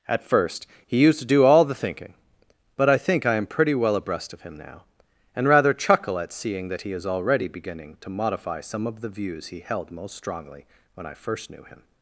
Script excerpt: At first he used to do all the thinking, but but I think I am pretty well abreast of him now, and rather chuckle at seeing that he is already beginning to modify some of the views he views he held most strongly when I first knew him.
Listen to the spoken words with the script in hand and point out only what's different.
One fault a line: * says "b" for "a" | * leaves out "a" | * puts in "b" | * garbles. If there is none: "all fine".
* leaves out "but"
* leaves out "views he"